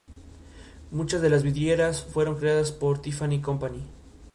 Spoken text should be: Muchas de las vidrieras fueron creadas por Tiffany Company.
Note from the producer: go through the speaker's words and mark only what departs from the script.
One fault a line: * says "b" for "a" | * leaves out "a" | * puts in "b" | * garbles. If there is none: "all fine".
all fine